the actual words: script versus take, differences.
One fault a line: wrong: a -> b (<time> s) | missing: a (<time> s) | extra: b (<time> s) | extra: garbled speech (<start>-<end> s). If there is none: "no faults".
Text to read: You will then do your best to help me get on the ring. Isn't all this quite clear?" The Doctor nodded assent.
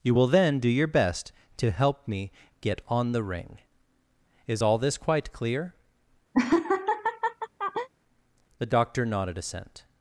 wrong: Isn't -> Is (4.5 s)